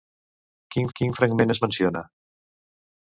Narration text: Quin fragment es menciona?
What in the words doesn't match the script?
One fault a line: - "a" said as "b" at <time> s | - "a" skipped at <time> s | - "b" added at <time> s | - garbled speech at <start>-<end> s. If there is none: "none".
- "quin" added at 1.0 s